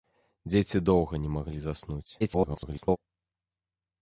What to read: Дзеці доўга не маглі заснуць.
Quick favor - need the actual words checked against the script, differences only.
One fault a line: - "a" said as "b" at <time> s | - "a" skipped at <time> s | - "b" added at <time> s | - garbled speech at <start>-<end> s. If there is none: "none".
- garbled speech at 2.2-3.0 s